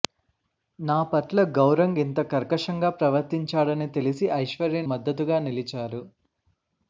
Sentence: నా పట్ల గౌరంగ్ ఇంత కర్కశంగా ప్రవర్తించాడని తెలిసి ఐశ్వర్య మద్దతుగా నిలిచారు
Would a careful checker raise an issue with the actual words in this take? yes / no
no